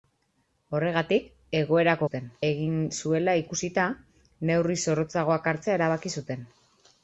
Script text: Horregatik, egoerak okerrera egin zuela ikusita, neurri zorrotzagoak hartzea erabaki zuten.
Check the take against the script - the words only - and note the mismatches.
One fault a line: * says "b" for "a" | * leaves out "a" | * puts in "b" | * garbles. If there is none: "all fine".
* says "zuten" for "okerrera"